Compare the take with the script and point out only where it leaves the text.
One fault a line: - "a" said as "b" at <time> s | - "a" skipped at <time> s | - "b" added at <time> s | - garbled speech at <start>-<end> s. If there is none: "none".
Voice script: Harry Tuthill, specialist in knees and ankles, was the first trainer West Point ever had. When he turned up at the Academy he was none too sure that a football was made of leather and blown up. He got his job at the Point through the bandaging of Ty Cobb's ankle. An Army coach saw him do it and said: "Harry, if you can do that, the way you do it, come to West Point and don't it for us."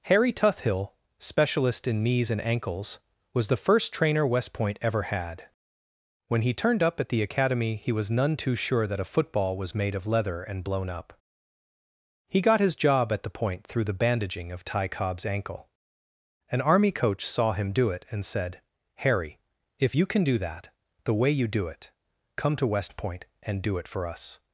- "don't" said as "do" at 23.6 s